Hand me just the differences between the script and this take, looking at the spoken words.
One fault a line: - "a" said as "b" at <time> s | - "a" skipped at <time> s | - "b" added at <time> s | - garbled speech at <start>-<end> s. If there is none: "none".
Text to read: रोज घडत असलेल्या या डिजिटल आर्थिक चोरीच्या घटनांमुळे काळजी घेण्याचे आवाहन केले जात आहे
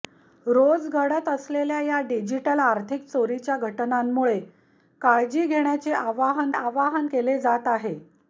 - "आवाहन" added at 6.5 s